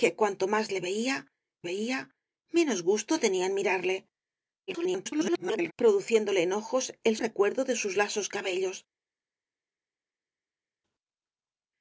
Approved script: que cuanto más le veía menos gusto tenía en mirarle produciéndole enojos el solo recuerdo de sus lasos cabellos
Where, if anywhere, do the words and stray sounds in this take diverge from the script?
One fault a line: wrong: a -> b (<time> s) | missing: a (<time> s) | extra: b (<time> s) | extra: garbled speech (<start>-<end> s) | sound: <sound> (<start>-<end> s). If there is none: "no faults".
extra: veía (1.7 s)
extra: garbled speech (4.7-5.7 s)
missing: solo (7.1 s)